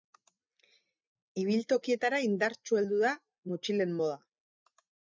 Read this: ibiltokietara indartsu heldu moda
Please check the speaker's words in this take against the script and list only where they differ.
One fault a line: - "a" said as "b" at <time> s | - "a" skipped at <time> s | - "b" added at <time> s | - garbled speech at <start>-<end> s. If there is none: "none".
- "da motxilen" added at 3.1 s